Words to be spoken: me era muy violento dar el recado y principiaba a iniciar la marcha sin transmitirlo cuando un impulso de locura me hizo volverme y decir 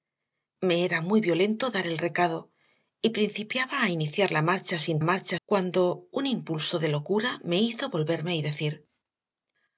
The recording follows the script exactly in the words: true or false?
false